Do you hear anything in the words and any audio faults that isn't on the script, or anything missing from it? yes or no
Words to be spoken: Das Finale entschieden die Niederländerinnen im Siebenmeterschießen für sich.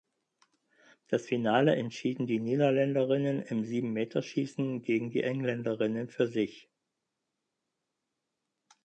yes